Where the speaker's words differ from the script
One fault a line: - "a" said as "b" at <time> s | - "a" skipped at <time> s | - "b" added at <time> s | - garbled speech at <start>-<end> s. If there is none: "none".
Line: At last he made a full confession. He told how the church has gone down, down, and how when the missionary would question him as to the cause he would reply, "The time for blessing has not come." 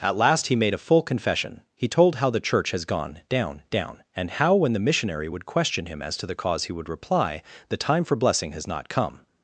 none